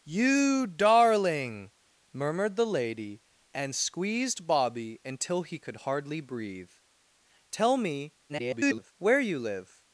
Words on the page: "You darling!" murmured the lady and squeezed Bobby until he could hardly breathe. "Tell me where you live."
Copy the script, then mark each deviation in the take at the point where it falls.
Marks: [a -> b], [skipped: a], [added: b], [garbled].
"You darling!" murmured the lady and squeezed Bobby until he could hardly breathe. "Tell me [garbled] where you live."